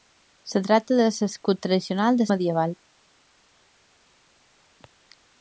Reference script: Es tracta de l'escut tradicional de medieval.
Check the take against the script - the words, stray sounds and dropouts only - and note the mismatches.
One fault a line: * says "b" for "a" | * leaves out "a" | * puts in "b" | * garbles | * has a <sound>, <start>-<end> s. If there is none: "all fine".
all fine